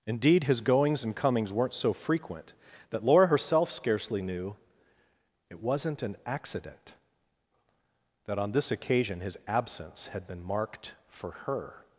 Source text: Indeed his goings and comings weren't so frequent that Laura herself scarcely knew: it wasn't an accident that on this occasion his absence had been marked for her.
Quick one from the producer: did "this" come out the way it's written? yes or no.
yes